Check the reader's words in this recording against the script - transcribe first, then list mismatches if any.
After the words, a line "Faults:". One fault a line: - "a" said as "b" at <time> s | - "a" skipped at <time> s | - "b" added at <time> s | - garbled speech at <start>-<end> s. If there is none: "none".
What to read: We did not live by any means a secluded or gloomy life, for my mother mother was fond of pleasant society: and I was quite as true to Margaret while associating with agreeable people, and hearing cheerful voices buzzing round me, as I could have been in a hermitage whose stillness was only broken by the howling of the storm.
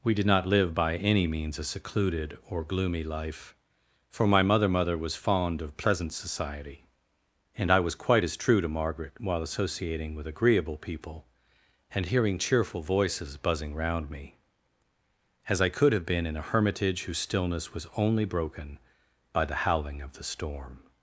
We did not live by any means a secluded or gloomy life, for my mother mother was fond of pleasant society: and I was quite as true to Margaret while associating with agreeable people, and hearing cheerful voices buzzing round me, as I could have been in a hermitage whose stillness was only broken by the howling of the storm.
Faults:
none